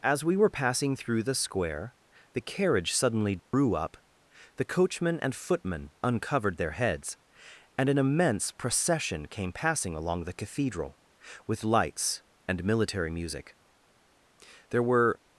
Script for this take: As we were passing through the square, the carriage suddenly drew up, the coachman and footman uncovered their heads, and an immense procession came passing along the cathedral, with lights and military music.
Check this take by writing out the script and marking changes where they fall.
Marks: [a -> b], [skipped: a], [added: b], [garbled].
As we were passing through the square, the carriage suddenly drew up, the coachman and footman uncovered their heads, and an immense procession came passing along the cathedral, with lights and military music. [added: There were]